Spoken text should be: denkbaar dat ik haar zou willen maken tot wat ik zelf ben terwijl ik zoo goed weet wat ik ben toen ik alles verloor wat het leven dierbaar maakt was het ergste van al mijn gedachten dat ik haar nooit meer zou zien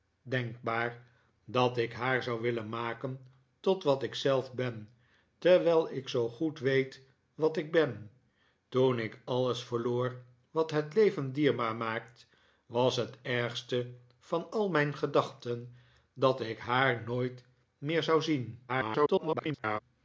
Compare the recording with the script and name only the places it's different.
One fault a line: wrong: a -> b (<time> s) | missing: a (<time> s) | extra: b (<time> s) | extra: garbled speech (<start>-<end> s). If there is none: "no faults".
extra: garbled speech (18.7-19.8 s)